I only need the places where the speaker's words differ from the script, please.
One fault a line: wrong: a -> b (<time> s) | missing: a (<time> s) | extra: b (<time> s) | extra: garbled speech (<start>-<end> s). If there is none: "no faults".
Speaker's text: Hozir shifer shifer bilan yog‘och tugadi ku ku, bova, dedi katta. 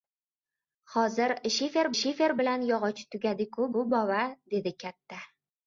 no faults